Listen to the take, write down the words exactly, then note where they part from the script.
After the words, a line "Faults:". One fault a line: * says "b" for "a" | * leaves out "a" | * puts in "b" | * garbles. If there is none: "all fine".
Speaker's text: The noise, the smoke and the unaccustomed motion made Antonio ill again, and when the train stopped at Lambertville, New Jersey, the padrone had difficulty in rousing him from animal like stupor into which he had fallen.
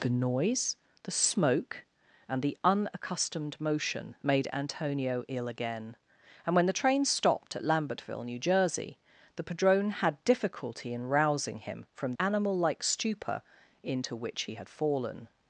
The noise, the smoke and the unaccustomed motion made Antonio ill again, and when the train stopped at Lambertville, New Jersey, the padrone had difficulty in rousing him from animal like stupor into which he had fallen.
Faults:
all fine